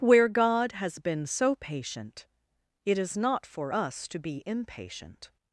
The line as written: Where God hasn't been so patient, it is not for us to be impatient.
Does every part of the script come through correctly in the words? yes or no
no